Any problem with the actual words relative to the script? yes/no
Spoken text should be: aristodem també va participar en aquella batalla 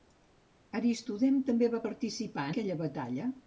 yes